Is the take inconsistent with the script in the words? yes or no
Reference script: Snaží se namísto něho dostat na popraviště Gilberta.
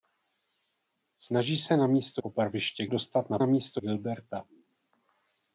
yes